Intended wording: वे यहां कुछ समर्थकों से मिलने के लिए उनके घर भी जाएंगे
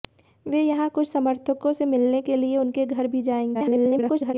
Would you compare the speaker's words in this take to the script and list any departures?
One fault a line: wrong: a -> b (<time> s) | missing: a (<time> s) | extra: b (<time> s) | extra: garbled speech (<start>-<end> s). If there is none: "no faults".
extra: garbled speech (3.5-4.3 s)